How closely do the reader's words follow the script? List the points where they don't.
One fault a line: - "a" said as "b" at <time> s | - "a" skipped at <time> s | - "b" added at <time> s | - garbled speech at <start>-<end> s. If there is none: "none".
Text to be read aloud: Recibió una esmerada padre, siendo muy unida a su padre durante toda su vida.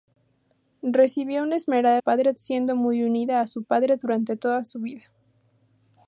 none